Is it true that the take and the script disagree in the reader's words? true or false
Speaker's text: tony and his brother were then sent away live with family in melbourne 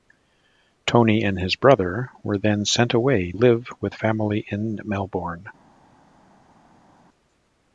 false